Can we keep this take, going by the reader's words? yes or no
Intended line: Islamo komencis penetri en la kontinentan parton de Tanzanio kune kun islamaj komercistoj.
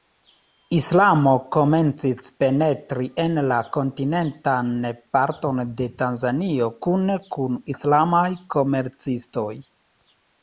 yes